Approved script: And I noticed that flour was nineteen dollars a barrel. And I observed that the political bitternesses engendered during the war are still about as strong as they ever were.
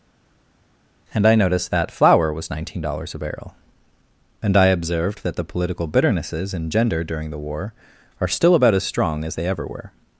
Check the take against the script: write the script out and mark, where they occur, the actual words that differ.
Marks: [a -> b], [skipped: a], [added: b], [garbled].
And I noticed that flour was nineteen dollars a barrel. And I observed that the political bitternesses engendered during the war are still about as strong as they ever were.